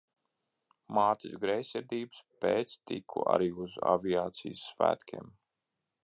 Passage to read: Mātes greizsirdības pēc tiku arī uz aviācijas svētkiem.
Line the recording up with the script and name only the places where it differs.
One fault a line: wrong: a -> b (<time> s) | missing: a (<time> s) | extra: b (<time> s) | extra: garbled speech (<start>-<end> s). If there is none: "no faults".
no faults